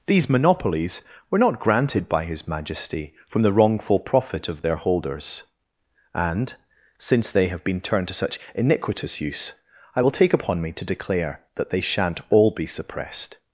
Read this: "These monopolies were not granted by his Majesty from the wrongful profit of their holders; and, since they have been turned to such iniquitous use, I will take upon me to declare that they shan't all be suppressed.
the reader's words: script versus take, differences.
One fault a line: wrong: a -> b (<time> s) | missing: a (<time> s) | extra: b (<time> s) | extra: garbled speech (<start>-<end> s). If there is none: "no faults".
no faults